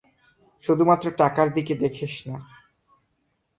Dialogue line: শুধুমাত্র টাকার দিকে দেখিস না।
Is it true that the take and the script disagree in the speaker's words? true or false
false